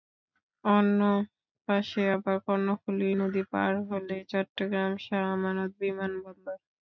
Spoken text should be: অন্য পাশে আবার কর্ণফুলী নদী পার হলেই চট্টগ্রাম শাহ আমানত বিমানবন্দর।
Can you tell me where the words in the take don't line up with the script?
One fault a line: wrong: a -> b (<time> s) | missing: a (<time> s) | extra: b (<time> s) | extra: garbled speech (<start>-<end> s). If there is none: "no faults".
no faults